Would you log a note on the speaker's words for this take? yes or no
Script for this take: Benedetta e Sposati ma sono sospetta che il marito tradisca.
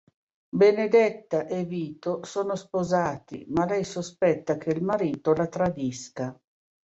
yes